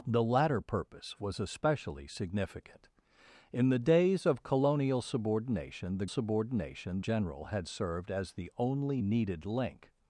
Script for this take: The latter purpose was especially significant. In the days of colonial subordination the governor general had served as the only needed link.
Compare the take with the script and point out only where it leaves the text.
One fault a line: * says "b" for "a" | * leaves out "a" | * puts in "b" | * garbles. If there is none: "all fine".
* says "subordination" for "governor"